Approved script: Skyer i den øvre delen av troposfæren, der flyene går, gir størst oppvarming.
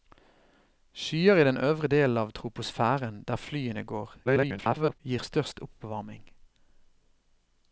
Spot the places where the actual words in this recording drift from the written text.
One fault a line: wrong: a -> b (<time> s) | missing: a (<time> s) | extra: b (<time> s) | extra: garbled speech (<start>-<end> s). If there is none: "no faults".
extra: garbled speech (4.3-5.0 s)